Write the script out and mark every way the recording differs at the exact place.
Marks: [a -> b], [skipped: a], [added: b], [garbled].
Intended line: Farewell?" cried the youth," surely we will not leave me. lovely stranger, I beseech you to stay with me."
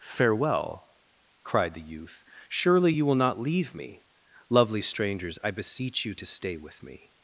Farewell?" cried the youth," surely [we -> you] will not leave me. lovely [stranger, -> strangers] I beseech you to stay with me."